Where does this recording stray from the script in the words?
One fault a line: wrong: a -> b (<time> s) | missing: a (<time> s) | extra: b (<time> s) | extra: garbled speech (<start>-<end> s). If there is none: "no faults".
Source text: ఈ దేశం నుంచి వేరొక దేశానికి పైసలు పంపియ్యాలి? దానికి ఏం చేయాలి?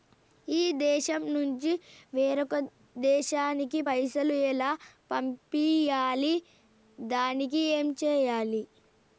extra: ఎలా (4.5 s)